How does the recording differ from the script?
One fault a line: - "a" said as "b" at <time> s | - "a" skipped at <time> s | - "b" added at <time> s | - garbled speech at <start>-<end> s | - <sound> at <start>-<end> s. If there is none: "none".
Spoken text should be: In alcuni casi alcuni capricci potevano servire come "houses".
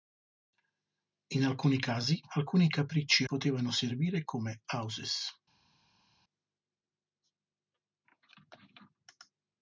none